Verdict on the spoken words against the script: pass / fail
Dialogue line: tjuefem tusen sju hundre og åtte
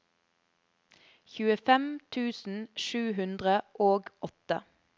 pass